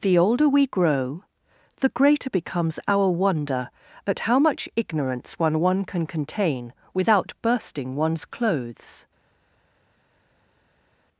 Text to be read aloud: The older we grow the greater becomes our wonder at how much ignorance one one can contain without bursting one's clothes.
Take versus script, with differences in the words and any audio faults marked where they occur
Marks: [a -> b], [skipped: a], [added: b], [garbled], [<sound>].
The older we grow the greater becomes our wonder at how much ignorance one one can contain without bursting one's clothes.